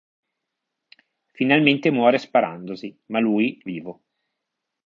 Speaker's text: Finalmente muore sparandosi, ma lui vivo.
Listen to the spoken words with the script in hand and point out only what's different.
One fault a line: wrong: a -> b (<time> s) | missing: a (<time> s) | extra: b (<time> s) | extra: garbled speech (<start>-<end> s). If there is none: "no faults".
no faults